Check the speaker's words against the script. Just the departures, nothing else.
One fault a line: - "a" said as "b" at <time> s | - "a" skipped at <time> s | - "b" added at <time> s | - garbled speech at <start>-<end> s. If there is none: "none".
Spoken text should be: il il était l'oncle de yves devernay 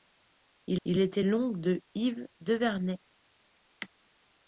none